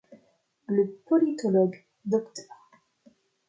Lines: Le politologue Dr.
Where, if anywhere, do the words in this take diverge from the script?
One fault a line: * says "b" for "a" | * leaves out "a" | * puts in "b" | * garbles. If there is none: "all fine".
all fine